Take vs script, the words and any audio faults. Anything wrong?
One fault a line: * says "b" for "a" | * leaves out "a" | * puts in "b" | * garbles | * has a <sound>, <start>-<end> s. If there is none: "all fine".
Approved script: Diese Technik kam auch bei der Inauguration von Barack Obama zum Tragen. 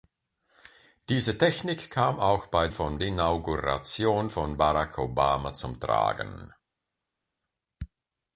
* says "von" for "der"